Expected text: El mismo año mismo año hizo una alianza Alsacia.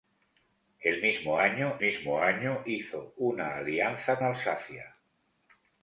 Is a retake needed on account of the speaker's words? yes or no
no